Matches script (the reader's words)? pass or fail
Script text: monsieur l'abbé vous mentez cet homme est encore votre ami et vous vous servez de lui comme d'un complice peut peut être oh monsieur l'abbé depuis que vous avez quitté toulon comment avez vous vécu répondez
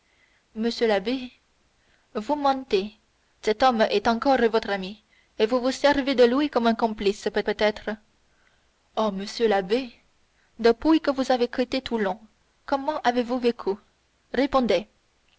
pass